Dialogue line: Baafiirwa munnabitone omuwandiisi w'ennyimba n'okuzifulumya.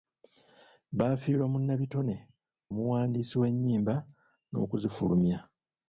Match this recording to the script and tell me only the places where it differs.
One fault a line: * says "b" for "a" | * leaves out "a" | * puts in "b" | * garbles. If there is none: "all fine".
all fine